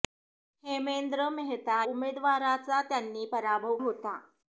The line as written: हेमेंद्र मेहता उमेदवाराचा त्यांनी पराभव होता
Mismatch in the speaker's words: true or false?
false